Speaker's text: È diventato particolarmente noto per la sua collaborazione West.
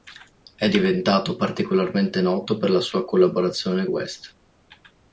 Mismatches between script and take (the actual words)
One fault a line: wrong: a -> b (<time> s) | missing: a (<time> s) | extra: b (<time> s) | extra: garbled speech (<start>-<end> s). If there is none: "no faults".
no faults